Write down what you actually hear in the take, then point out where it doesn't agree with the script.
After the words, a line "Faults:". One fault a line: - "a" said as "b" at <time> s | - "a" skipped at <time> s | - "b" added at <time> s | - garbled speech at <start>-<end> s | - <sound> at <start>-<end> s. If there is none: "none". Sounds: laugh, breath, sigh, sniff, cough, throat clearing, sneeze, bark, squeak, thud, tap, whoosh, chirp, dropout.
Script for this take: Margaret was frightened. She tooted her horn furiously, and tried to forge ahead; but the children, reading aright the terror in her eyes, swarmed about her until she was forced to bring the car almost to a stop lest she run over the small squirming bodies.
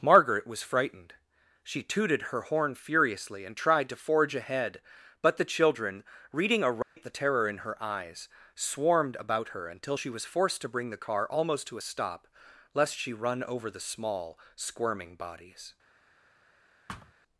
Margaret was frightened. She tooted her horn furiously, and tried to forge ahead; but the children, reading aright the terror in her eyes, swarmed about her until she was forced to bring the car almost to a stop lest she run over the small squirming bodies.
Faults:
- dropout at 6.8-7.0 s
- thud at 16.9-17.1 s